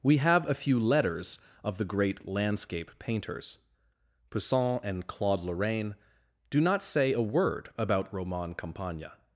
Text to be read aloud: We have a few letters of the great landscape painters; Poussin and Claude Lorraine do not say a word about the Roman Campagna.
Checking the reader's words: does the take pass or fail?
fail